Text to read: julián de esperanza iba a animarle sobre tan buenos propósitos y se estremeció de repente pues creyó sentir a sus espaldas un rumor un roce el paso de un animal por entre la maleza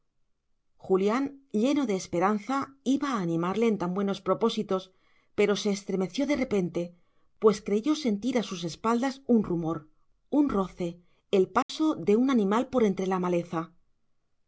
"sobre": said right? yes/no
no